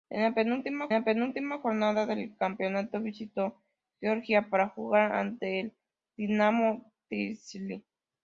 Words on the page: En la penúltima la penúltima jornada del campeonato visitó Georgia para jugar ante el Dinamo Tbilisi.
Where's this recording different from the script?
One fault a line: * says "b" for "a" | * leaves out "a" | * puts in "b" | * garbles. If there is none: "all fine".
all fine